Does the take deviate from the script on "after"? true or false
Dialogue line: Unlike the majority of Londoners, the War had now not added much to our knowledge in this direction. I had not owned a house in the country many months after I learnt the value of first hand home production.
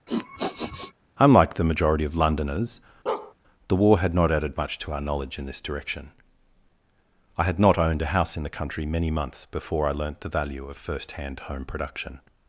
true